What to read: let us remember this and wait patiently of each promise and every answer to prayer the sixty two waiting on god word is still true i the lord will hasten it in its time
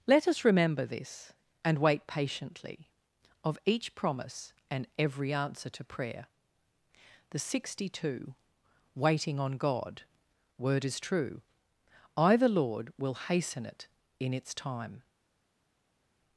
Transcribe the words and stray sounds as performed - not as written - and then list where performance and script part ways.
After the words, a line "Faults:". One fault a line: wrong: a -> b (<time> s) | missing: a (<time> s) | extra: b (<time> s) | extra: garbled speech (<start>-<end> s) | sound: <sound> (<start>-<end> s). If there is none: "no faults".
let us remember this and wait patiently of each promise and every answer to prayer the sixty two waiting on god word is true i the lord will hasten it in its time
Faults:
missing: still (11.0 s)